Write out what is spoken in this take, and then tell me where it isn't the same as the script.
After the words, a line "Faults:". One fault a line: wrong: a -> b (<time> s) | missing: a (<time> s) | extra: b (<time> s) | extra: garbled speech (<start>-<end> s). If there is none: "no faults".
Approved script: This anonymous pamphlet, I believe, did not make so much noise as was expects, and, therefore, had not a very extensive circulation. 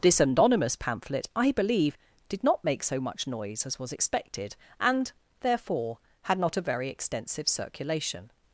This anonymous pamphlet, I believe, did not make so much noise as was expected, and, therefore, had not a very extensive circulation.
Faults:
wrong: expects -> expected (3.9 s)